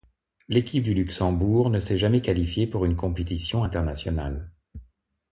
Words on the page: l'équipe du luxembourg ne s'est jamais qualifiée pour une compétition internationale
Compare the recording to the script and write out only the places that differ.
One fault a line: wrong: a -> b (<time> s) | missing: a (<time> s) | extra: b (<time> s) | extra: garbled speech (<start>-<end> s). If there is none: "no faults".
no faults